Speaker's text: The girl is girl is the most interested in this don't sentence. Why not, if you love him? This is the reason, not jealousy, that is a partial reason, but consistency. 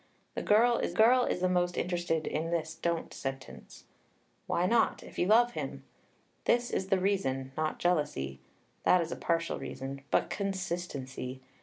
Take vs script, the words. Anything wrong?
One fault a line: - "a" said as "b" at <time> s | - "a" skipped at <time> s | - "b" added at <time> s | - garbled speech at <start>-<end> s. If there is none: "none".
none